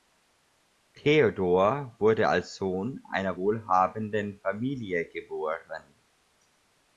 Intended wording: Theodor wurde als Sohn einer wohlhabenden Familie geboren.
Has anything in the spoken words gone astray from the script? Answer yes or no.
no